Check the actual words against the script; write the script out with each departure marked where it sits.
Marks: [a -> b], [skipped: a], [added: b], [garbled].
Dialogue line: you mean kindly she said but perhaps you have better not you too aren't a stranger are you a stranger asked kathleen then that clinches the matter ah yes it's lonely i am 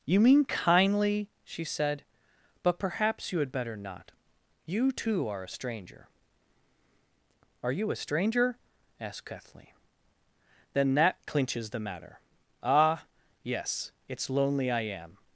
you mean kindly she said but perhaps you [have -> had] better not you too [aren't -> are] a stranger are you a stranger asked kathleen then that clinches the matter ah yes it's lonely i am